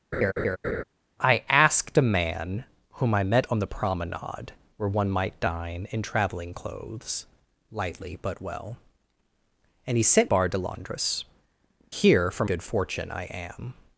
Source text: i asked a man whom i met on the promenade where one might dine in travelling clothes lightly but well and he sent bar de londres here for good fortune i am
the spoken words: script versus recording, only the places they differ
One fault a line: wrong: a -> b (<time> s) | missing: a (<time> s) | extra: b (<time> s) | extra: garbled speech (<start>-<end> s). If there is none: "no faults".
no faults